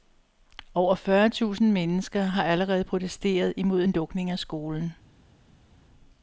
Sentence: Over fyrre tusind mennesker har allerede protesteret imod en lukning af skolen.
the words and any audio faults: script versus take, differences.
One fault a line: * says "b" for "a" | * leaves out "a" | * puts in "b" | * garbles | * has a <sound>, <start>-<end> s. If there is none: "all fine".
all fine